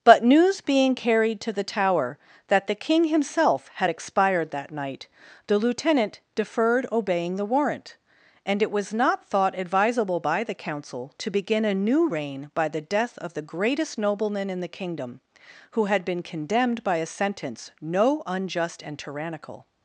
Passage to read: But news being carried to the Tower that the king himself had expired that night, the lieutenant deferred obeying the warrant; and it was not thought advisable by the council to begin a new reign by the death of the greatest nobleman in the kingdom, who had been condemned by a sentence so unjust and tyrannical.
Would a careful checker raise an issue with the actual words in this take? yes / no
yes